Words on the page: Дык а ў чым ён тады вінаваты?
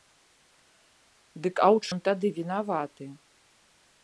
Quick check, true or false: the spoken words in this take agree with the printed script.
false